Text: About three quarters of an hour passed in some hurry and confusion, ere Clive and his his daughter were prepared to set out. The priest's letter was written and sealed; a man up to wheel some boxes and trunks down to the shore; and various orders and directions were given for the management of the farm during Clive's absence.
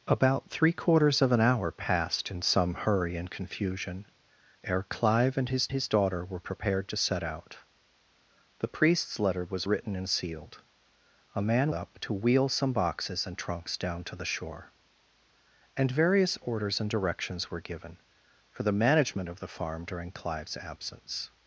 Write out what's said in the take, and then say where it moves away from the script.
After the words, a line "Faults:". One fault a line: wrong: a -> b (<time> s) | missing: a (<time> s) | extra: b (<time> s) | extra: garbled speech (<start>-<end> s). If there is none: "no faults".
About three quarters of an hour passed in some hurry and confusion, ere Clive and his his daughter were prepared to set out. The priest's letter was written and sealed; a man up to wheel some boxes and trunks down to the shore; and various orders and directions were given for the management of the farm during Clive's absence.
Faults:
no faults